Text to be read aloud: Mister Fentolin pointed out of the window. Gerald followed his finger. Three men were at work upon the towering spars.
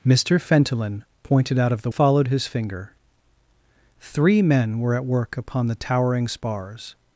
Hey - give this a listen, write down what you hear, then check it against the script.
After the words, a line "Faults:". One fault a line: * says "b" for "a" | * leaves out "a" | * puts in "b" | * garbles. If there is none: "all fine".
Mister Fentolin pointed out of the followed his finger. Three men were at work upon the towering spars.
Faults:
* leaves out "window Gerald"